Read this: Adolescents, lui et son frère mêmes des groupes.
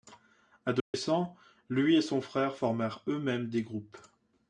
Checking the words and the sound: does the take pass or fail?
fail